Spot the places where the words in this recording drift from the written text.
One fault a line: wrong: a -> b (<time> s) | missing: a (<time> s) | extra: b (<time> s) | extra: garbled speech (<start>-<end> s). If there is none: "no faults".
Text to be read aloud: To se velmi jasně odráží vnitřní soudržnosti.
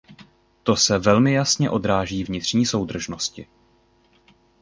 no faults